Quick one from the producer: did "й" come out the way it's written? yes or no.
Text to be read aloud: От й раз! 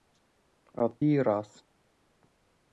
yes